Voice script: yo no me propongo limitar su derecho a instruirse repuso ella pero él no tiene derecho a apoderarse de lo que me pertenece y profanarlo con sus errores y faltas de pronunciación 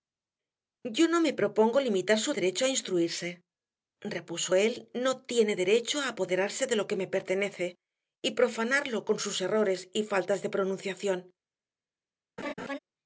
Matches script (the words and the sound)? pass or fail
fail